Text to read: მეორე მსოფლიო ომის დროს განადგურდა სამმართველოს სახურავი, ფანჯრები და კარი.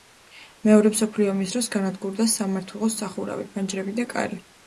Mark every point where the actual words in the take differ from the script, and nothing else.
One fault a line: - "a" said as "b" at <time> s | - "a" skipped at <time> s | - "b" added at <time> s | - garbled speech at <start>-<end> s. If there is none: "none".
none